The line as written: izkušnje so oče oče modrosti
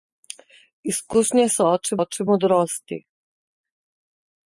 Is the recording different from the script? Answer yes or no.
no